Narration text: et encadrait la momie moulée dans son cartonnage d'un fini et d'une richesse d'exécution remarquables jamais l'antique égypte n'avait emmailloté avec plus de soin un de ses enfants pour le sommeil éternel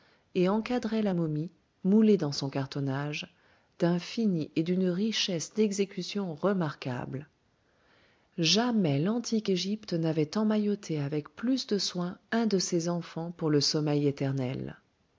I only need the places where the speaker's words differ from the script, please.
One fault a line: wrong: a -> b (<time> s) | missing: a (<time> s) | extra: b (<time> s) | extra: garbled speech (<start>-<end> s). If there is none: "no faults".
no faults